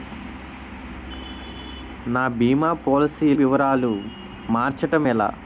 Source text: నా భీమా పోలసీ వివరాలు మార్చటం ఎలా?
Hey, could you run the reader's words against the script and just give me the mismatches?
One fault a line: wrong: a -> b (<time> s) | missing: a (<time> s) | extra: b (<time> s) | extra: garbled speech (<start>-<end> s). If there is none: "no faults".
no faults